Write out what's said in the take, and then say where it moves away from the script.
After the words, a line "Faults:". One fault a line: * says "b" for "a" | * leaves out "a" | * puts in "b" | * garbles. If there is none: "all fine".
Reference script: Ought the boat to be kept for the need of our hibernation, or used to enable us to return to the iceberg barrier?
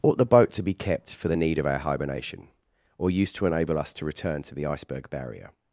Ought the boat to be kept for the need of our hibernation, or used to enable us to return to the iceberg barrier?
Faults:
all fine